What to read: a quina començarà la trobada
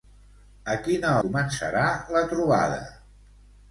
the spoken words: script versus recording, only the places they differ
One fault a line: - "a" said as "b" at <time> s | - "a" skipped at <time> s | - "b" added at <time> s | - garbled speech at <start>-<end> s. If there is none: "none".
none